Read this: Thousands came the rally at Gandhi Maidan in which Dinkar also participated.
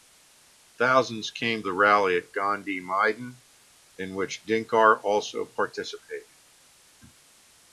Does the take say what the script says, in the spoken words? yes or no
yes